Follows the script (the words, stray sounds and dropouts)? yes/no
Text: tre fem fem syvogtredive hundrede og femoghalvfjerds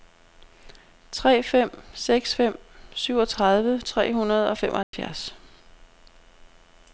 no